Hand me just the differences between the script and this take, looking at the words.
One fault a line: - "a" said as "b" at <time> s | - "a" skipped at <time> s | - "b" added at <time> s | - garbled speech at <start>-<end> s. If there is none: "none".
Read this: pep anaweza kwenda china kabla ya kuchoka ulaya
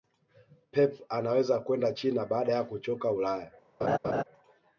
- "kabla" said as "baada" at 2.3 s